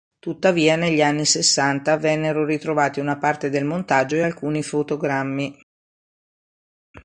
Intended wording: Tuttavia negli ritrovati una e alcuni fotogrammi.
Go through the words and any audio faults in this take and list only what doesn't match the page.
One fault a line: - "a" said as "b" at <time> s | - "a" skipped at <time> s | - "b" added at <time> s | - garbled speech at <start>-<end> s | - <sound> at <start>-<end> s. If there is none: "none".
- "anni Sessanta vennero" added at 1.0 s
- "parte del montaggio" added at 3.2 s